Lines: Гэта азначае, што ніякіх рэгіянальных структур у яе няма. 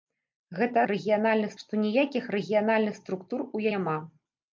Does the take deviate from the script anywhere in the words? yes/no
yes